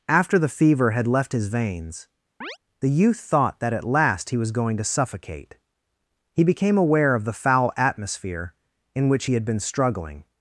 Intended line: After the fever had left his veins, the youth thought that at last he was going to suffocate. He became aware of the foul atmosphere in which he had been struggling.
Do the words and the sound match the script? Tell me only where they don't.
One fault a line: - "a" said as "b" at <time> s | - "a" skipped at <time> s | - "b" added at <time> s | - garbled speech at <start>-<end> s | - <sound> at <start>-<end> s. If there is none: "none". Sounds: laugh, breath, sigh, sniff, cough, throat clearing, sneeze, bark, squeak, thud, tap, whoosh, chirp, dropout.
- chirp at 2.4-2.6 s